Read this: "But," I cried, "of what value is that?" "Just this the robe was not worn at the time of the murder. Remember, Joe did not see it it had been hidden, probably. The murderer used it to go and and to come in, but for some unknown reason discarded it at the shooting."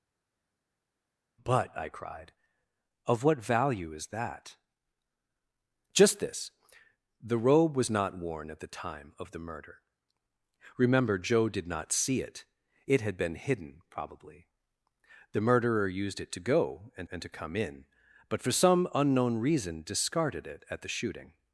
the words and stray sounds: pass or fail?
pass